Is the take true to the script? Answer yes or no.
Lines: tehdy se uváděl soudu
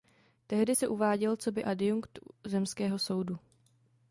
no